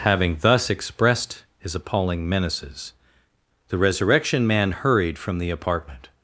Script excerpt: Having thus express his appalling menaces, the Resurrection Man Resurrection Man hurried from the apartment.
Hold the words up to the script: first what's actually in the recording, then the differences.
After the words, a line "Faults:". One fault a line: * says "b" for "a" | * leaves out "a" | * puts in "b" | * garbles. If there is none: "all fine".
Having thus expressed his appalling menaces, the Resurrection Man hurried from the apartment.
Faults:
* says "expressed" for "express"
* leaves out "Resurrection Man"